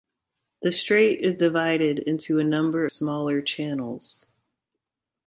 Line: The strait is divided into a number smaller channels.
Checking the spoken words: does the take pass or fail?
pass